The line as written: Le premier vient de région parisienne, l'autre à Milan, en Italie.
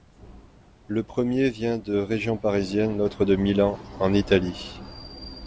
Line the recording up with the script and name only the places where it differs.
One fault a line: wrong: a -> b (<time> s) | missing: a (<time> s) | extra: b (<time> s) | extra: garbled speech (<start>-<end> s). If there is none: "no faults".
wrong: à -> de (3.3 s)